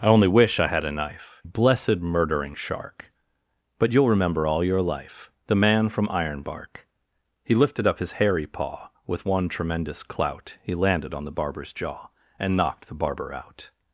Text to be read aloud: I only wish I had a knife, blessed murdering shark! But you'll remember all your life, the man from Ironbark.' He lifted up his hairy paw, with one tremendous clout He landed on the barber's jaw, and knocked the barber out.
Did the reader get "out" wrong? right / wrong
right